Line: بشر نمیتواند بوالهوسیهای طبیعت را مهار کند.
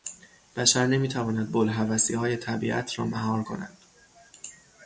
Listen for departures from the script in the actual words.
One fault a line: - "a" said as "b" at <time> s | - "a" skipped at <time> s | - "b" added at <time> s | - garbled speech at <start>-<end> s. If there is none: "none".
none